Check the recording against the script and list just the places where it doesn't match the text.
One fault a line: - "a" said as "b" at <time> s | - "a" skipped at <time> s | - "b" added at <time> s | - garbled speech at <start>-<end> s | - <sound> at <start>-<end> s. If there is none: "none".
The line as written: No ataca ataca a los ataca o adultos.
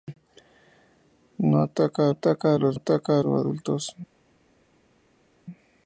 none